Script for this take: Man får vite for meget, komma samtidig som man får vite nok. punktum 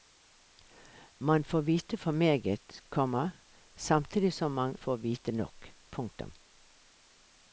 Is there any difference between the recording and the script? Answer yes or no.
no